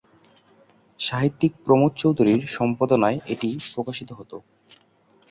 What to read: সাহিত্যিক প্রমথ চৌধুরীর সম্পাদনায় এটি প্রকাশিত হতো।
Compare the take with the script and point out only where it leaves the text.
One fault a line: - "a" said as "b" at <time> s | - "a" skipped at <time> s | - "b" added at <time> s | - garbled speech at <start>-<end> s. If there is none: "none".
none